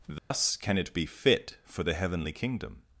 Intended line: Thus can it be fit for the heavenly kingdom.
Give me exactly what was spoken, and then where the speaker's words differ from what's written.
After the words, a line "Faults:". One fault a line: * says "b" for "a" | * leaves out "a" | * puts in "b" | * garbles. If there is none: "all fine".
Thus can it be fit for the heavenly kingdom.
Faults:
all fine